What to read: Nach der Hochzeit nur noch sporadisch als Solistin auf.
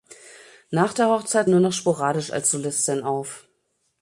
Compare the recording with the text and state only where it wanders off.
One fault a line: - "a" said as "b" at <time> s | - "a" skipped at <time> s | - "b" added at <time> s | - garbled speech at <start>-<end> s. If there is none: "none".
none